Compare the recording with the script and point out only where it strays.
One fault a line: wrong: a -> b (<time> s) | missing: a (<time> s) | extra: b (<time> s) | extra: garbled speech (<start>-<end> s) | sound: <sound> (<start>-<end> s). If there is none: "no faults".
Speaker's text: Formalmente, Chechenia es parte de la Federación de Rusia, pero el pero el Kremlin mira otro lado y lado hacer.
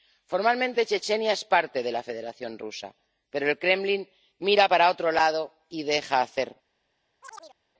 missing: pero el (3.6 s)
extra: para (4.7 s)
wrong: lado -> deja (5.8 s)
sound: chirp (7.2-7.6 s)